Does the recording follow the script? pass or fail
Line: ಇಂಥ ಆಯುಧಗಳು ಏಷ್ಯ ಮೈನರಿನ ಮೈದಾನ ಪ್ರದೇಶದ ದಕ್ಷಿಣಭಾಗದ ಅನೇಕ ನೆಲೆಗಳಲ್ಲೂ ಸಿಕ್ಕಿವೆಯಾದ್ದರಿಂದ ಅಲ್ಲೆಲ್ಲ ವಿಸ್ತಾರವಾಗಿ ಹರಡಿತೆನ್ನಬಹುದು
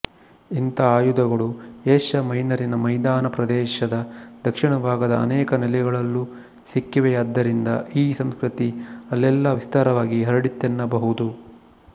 fail